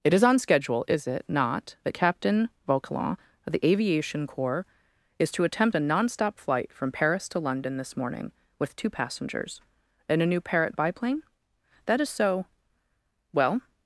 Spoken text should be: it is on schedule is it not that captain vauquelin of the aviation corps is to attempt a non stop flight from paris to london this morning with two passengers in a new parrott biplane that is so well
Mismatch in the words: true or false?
false